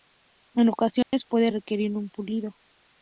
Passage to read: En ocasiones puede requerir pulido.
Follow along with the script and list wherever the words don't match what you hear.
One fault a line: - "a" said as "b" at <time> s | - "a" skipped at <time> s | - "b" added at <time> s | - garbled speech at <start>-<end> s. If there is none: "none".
- "un" added at 2.0 s